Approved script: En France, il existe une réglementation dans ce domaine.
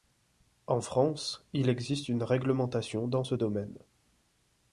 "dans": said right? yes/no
yes